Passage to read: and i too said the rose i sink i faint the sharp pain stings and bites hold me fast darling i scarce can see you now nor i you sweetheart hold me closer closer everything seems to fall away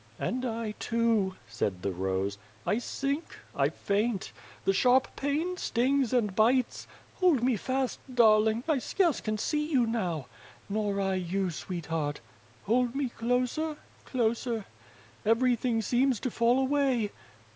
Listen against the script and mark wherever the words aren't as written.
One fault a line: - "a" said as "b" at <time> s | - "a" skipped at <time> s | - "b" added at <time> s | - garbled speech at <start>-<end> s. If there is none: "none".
none